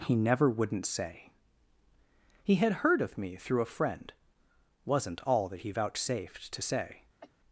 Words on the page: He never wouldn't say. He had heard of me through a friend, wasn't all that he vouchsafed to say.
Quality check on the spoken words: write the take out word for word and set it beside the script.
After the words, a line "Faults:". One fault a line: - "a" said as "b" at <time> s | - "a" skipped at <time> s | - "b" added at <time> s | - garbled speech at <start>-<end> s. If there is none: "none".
He never wouldn't say. He had heard of me through a friend, wasn't all that he vouchsafed to say.
Faults:
none